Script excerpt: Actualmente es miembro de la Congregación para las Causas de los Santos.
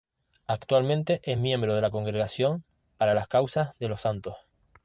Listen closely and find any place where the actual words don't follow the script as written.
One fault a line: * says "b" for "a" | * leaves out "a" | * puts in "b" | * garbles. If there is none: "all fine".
all fine